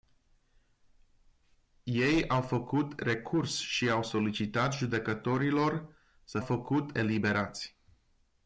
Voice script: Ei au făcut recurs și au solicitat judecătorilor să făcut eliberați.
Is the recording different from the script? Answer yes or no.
no